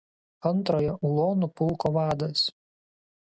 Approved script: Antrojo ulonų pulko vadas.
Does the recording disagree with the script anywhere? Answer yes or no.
no